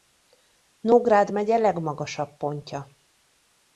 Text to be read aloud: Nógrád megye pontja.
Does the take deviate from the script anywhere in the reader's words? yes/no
yes